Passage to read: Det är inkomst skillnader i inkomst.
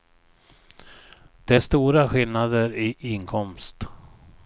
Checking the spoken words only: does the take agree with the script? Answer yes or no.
no